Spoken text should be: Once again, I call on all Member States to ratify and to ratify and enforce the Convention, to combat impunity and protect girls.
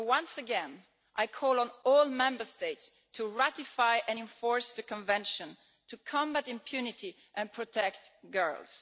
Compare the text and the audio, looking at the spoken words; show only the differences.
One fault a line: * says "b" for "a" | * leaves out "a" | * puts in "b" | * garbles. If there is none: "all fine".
* leaves out "to ratify and"